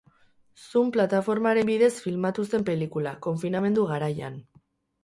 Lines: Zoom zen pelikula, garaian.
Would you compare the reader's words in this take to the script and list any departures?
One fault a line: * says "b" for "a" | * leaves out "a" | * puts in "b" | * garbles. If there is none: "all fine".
* puts in "plataformaren bidez filmatu"
* puts in "konfinamendu"